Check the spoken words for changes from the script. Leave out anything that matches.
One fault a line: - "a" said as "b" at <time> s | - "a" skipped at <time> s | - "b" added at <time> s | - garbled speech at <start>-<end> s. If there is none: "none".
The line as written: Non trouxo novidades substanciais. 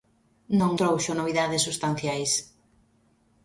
none